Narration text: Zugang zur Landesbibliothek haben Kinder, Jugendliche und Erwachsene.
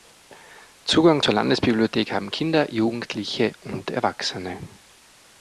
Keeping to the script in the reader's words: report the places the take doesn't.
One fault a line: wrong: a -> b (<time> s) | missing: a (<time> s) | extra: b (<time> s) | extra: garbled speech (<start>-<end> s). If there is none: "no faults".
no faults